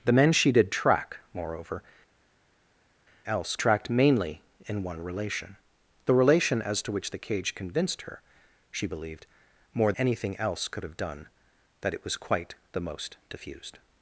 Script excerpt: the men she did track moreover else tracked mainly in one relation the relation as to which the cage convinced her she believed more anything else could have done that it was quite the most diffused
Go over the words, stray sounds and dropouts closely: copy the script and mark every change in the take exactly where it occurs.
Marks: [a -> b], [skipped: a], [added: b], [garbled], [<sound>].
the men she did track moreover else tracked mainly in one relation the relation as to which the cage convinced her she believed more anything else could have done that it was quite the most diffused